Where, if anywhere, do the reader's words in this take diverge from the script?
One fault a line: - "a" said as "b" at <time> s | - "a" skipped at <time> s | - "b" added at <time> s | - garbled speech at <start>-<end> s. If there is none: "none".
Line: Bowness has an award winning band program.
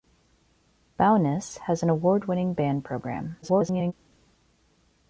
- garbled speech at 3.4-3.9 s